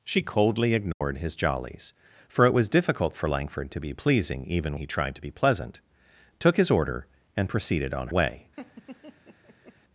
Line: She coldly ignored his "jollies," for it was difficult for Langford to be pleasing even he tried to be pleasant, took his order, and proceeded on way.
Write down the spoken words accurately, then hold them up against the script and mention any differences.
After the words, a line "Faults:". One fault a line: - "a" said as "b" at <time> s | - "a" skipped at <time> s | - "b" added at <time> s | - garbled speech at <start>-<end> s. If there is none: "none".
She coldly ignored his "jollies," for it was difficult for Langford to be pleasing even he tried to be pleasant, took his order, and proceeded on way.
Faults:
none